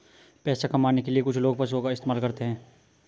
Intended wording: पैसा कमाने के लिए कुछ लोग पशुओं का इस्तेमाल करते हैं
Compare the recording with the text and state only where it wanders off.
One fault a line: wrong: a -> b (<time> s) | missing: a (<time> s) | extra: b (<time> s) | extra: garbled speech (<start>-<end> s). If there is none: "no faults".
no faults